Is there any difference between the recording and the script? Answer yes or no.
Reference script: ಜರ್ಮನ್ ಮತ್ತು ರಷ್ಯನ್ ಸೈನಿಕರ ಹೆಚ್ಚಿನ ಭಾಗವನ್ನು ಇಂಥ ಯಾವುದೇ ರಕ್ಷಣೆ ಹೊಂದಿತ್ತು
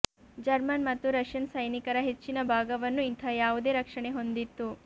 no